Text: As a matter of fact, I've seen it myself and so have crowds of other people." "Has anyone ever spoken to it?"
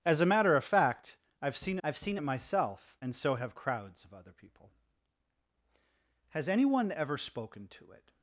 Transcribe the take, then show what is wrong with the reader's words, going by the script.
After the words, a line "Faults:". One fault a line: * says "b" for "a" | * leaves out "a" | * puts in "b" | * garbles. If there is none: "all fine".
As a matter of fact, I've seen I've seen it myself and so have crowds of other people." "Has anyone ever spoken to it?"
Faults:
* puts in "I've seen"